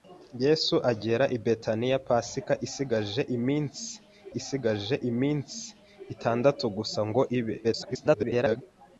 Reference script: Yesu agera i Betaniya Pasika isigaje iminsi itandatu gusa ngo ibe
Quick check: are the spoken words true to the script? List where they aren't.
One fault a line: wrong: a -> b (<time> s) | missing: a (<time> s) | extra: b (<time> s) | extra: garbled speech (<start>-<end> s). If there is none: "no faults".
extra: isigaje iminsi (4.4 s)
extra: garbled speech (7.6-8.6 s)